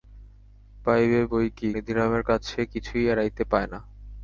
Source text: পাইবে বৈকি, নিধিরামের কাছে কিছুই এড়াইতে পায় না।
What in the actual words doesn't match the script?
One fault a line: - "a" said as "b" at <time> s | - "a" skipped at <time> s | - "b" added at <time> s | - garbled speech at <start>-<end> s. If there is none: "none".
none